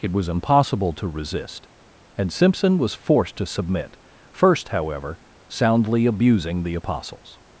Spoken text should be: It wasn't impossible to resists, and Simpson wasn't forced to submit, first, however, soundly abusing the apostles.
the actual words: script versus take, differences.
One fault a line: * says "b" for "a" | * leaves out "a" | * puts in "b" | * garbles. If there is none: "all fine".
* says "was" for "wasn't"
* says "resist" for "resists"
* says "was" for "wasn't"